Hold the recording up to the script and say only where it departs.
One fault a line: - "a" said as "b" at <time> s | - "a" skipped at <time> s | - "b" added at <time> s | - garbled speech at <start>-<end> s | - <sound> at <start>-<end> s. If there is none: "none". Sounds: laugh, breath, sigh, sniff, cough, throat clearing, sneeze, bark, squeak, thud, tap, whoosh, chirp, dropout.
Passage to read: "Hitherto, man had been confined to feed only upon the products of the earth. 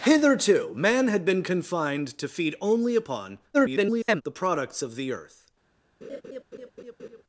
- garbled speech at 3.5-4.2 s
- laugh at 6.0-7.2 s